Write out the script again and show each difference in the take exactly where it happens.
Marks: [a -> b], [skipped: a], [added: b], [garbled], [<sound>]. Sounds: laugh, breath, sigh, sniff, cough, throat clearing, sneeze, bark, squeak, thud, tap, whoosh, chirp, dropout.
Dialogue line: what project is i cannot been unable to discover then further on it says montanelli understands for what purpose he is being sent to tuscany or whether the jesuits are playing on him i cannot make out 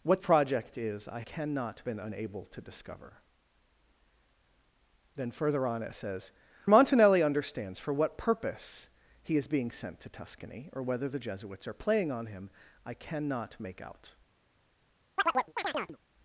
what project is i cannot been unable to discover then further on it says montanelli understands for what purpose he is being sent to tuscany or whether the jesuits are playing on him i cannot make out [chirp]